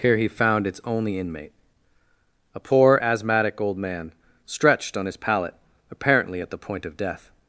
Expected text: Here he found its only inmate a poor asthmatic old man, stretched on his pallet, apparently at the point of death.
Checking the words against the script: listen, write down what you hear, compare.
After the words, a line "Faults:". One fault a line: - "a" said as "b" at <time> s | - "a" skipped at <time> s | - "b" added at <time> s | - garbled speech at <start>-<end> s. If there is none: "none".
Here he found its only inmate a poor asthmatic old man, stretched on his pallet, apparently at the point of death.
Faults:
none